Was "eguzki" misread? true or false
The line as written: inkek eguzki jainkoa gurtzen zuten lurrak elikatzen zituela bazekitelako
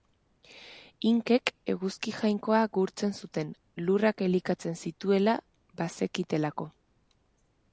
false